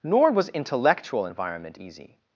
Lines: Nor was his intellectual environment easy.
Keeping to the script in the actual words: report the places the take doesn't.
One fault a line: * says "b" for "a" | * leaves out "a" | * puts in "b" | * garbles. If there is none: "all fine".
* leaves out "his"